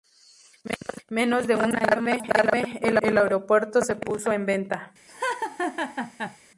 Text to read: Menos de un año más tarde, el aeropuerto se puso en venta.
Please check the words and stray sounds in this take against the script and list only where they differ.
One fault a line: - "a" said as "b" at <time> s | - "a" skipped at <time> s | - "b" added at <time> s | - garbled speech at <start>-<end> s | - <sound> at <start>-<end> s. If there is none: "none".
- "el" added at 3.0 s
- laugh at 5.1-6.4 s